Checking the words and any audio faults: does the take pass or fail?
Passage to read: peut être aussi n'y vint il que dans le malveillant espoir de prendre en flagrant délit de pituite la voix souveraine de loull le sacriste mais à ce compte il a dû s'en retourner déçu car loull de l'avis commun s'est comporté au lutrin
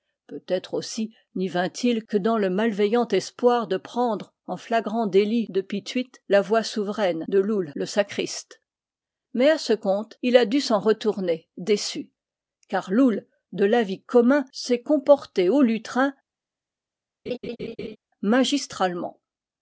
fail